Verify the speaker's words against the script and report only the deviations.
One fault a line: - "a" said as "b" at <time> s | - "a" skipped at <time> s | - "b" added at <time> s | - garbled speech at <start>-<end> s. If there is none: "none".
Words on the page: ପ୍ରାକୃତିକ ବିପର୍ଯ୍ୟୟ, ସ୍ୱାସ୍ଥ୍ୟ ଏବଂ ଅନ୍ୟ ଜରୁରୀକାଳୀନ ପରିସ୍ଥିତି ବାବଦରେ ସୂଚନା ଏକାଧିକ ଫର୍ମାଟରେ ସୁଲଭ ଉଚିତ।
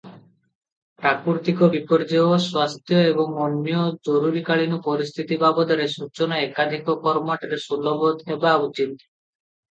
- "ହେବା" added at 8.3 s